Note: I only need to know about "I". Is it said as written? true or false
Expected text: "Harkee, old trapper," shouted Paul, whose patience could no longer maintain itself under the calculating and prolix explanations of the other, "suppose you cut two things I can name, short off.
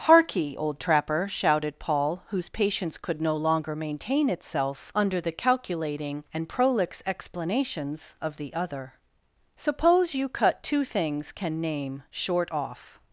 false